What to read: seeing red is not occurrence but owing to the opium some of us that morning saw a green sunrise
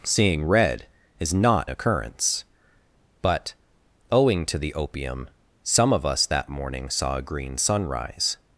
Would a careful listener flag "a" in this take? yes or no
no